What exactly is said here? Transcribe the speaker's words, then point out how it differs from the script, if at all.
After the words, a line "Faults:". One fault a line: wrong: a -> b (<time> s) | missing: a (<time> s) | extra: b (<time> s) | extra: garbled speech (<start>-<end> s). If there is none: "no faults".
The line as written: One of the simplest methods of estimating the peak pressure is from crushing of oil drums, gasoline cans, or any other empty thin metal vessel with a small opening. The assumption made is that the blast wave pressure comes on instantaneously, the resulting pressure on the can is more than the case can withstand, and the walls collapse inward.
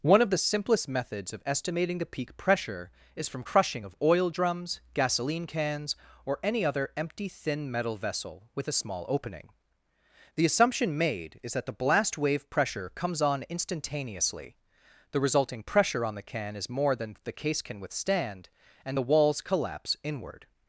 One of the simplest methods of estimating the peak pressure is from crushing of oil drums, gasoline cans, or any other empty thin metal vessel with a small opening. The assumption made is that the blast wave pressure comes on instantaneously, the resulting pressure on the can is more than the case can withstand, and the walls collapse inward.
Faults:
no faults